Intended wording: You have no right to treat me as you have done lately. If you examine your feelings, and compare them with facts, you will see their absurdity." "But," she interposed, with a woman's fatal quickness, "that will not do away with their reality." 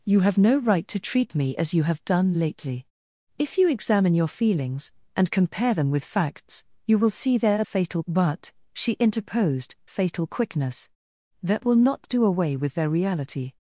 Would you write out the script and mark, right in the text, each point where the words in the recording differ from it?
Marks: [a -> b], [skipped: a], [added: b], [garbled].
You have no right to treat me as you have done lately. If you examine your feelings, and compare them with facts, you will see their [absurdity." -> fatal] "But," she interposed, [skipped: with a woman's] fatal quickness, "that will not do away with their reality."